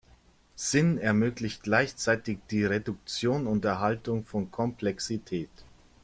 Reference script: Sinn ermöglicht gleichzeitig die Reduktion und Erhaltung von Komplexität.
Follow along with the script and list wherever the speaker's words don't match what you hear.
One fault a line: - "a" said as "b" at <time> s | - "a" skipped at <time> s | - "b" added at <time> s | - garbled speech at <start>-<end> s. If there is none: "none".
none